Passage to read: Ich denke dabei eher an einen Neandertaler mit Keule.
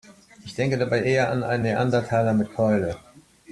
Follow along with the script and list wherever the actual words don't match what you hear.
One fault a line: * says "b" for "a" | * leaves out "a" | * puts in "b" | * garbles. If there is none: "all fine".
all fine